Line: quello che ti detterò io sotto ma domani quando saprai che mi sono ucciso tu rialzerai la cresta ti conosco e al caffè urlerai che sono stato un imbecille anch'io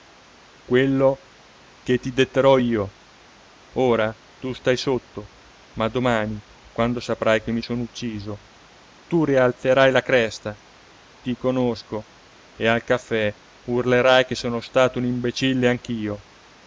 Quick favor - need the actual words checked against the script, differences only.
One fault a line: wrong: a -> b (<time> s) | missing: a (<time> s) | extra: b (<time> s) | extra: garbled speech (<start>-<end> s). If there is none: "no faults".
extra: ora tu stai (3.7 s)